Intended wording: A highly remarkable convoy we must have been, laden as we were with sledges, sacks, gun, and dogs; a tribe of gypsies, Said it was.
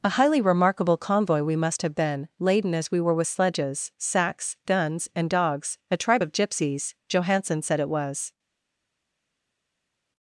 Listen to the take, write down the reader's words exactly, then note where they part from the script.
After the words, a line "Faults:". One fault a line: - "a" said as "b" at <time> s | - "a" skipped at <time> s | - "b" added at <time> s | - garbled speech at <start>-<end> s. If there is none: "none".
A highly remarkable convoy we must have been, laden as we were with sledges, sacks, guns, and dogs; a tribe of gypsies, Johansen said it was.
Faults:
- "gun" said as "guns" at 4.7 s
- "Johansen" added at 7.1 s